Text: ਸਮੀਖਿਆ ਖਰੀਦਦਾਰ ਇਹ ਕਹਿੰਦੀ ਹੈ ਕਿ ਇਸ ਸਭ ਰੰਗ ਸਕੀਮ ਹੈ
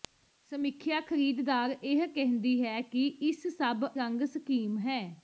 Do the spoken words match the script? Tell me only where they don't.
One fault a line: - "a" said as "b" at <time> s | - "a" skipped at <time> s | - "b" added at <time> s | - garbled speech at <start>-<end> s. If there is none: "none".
none